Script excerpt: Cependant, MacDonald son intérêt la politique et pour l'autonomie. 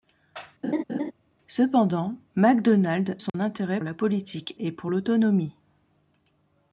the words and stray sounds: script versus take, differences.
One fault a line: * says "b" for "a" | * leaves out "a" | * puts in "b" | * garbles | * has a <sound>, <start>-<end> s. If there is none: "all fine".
* has a laugh, 0.6-1.1 s
* has a dropout, 3.3-3.3 s